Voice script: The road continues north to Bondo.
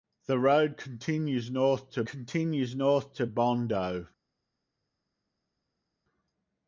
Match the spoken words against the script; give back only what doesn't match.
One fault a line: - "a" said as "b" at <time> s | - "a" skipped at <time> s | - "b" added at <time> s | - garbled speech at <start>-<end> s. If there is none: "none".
- "continues north to" added at 2.0 s